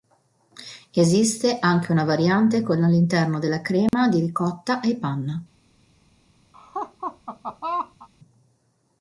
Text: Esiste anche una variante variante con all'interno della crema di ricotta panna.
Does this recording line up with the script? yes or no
no